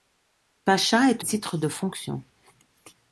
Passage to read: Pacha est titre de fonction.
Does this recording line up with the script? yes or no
yes